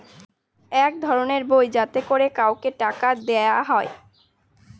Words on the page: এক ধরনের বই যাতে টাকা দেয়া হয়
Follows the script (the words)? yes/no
no